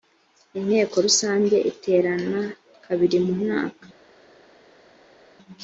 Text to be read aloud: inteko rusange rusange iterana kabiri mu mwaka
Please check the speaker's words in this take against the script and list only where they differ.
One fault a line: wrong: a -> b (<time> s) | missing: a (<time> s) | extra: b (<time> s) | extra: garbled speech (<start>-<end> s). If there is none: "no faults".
missing: rusange (1.6 s)